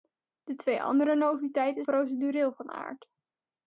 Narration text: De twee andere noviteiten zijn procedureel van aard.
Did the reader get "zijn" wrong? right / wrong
wrong